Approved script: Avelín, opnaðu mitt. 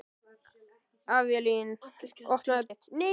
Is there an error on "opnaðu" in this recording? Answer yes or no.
no